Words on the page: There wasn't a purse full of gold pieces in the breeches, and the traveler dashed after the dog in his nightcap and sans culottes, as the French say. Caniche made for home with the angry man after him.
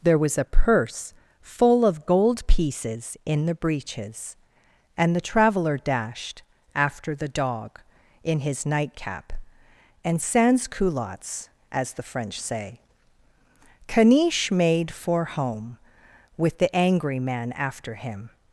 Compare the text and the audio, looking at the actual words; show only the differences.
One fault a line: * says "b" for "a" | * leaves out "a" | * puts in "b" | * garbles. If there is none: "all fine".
* says "was" for "wasn't"